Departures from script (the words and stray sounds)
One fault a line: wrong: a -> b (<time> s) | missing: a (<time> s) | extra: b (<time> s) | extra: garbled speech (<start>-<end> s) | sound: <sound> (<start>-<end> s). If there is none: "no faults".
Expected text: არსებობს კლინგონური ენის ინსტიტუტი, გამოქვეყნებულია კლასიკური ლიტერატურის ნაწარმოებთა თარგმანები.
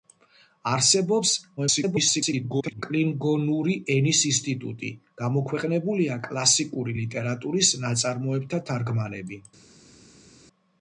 extra: garbled speech (1.6-2.8 s)